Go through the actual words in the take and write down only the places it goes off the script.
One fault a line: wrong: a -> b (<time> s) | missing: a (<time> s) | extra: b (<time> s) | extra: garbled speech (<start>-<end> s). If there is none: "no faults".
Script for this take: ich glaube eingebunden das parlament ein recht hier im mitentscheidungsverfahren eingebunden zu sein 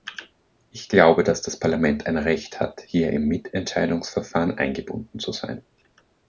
wrong: eingebunden -> dass (1.2 s)
extra: hat (2.6 s)